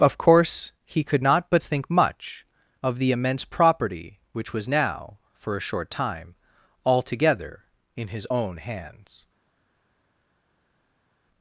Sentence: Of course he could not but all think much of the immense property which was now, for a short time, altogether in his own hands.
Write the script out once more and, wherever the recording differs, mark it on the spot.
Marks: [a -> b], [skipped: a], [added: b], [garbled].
Of course he could not but [skipped: all] think much of the immense property which was now, for a short time, altogether in his own hands.